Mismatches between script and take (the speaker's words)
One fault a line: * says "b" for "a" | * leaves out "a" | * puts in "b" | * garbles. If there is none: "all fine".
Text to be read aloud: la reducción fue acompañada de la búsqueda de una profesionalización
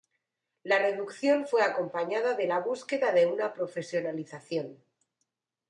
all fine